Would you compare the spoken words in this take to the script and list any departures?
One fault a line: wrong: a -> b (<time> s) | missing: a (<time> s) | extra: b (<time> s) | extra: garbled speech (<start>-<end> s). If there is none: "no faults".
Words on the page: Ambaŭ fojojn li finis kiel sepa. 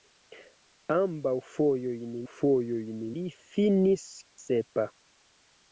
extra: fojojn (2.3 s)
missing: kiel (4.0 s)